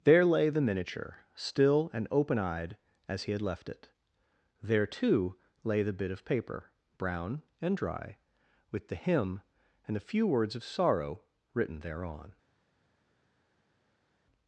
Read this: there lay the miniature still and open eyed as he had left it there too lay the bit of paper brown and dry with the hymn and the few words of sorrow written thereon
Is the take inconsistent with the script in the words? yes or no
yes